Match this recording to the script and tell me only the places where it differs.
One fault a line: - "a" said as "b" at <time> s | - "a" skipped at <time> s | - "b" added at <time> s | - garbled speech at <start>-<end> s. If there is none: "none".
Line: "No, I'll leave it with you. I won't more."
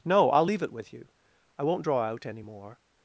- "draw out any" added at 1.8 s